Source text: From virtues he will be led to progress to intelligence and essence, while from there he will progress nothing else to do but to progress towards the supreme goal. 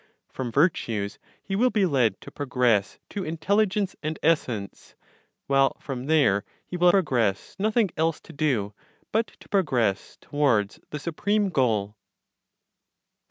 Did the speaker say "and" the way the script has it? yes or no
yes